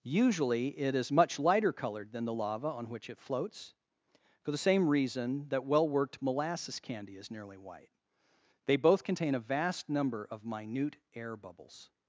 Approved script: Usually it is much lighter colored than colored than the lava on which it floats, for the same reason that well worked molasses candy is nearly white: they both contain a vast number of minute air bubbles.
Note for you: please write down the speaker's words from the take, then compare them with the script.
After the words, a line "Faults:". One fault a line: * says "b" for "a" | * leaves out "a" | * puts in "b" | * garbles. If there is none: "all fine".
Usually it is much lighter colored than the lava on which it floats, for the same reason that well worked molasses candy is nearly white: they both contain a vast number of minute air bubbles.
Faults:
* leaves out "colored than"